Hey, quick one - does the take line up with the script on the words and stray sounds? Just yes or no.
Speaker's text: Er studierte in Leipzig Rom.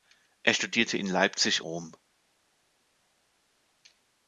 yes